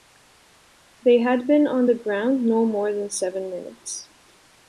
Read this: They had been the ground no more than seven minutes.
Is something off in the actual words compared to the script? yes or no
yes